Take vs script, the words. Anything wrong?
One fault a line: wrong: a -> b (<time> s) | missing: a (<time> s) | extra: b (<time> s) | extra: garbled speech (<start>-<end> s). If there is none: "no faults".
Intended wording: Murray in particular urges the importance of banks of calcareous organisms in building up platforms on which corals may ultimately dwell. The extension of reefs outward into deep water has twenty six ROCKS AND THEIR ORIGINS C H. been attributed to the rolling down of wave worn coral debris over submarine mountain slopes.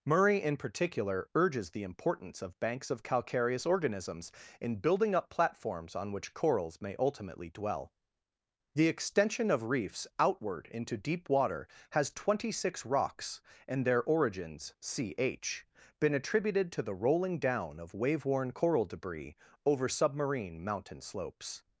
no faults